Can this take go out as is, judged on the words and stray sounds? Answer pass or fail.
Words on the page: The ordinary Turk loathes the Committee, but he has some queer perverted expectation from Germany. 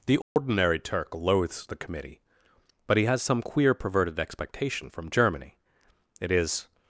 fail